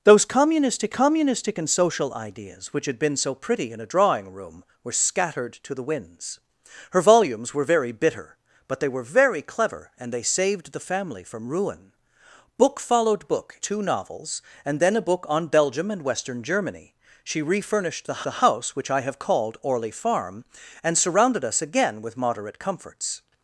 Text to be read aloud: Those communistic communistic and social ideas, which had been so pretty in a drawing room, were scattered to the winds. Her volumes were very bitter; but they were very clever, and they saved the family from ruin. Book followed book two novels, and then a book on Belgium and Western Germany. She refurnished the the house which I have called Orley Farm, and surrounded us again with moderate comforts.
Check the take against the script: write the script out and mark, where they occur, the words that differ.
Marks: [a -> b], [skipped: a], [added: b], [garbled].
Those communistic communistic and social ideas, which had been so pretty in a drawing room, were scattered to the winds. Her volumes were very bitter; but they were very clever, and they saved the family from ruin. Book followed book two novels, and then a book on Belgium and Western Germany. She refurnished the the house which I have called Orley Farm, and surrounded us again with moderate comforts.